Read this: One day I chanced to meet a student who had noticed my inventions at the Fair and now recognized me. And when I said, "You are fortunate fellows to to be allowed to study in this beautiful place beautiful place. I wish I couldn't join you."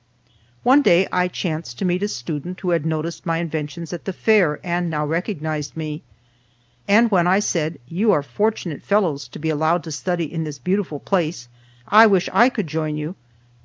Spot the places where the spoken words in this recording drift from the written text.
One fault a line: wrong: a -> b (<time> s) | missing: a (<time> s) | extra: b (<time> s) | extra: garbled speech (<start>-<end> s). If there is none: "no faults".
missing: to (9.4 s)
missing: beautiful place (11.5 s)
wrong: couldn't -> could (12.5 s)